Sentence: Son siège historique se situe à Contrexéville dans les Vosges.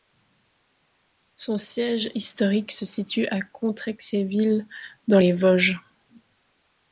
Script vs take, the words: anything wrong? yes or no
no